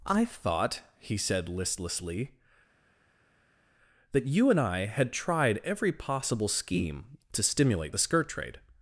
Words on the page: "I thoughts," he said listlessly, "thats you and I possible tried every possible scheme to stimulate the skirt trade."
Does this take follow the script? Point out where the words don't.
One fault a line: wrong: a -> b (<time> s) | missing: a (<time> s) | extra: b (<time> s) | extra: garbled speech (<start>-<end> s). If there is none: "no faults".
wrong: thoughts -> thought (0.2 s)
wrong: thats -> that (4.1 s)
wrong: possible -> had (4.8 s)